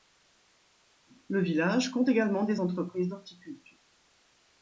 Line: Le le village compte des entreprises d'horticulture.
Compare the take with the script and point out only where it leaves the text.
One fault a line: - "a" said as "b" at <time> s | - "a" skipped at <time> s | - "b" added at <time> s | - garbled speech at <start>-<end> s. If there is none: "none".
- "le" skipped at 1.4 s
- "également" added at 2.1 s